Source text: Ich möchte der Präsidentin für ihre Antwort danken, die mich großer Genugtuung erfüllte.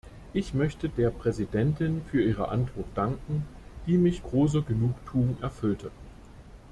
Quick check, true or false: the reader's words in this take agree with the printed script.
true